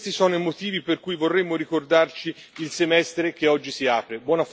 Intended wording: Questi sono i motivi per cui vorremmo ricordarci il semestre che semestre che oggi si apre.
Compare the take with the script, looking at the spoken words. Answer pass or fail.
fail